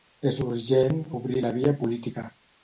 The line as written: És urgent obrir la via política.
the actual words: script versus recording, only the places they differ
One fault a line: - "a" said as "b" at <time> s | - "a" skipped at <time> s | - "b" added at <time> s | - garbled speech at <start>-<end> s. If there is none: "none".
none